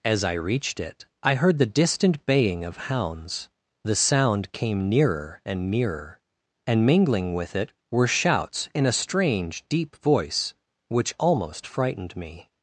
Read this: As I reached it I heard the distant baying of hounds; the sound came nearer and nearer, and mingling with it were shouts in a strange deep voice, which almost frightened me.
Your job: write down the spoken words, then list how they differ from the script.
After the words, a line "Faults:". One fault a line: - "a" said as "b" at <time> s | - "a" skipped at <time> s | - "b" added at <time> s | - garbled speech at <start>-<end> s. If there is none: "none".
As I reached it I heard the distant baying of hounds; the sound came nearer and nearer, and mingling with it were shouts in a strange deep voice, which almost frightened me.
Faults:
none